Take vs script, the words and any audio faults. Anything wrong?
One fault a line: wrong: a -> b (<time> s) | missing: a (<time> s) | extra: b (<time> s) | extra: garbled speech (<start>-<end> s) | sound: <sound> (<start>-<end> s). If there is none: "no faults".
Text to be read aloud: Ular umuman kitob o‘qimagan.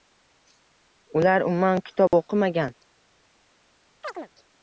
sound: dropout (2.1-2.1 s)
sound: chirp (4.0-4.3 s)